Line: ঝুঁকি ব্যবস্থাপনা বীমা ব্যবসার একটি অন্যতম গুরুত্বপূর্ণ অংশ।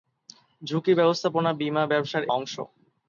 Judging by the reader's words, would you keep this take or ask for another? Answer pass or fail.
fail